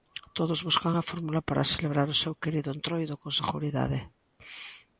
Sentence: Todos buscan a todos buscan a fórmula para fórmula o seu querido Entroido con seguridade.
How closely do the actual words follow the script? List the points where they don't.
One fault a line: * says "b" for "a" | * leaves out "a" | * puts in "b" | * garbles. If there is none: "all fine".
* leaves out "todos buscan a"
* says "celebrar" for "fórmula"